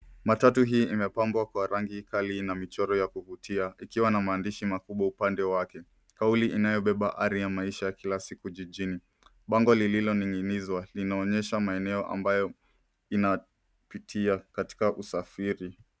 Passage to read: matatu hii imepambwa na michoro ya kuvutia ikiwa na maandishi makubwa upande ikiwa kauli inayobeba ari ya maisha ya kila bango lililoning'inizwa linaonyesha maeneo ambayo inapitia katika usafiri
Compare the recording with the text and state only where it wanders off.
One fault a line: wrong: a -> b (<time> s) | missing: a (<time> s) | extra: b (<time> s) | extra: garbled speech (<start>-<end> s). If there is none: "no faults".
extra: kwa rangi kali (1.4 s)
wrong: ikiwa -> wake (5.4 s)
extra: siku jijini (8.2 s)